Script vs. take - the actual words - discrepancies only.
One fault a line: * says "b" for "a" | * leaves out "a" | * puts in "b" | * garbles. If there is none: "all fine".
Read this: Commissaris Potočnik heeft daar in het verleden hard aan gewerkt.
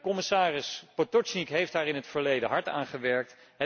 all fine